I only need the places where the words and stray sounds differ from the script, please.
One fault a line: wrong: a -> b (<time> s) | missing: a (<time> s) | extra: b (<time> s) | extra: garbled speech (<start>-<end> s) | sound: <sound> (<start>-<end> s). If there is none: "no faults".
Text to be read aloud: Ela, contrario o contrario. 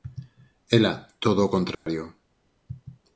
wrong: contrario -> todo (1.2 s)
sound: dropout (1.7-1.9 s)